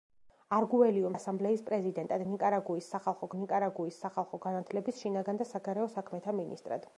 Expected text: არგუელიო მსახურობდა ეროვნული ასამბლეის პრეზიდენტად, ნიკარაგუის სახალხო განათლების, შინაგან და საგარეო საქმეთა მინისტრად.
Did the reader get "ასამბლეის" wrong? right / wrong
wrong